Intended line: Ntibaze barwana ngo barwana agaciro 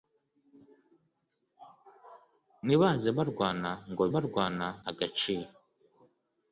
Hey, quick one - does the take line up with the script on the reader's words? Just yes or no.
yes